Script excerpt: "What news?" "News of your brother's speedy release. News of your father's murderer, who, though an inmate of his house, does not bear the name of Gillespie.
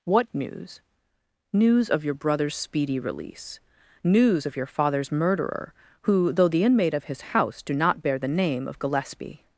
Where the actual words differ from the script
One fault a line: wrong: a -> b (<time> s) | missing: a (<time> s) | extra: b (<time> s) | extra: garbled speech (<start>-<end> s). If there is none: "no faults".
wrong: an -> the (6.5 s)
wrong: does -> do (7.6 s)